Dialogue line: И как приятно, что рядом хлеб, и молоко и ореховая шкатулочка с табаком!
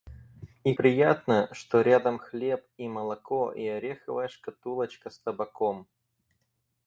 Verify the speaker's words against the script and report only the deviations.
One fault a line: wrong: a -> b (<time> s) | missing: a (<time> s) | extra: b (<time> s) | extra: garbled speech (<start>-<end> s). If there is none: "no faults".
missing: как (0.7 s)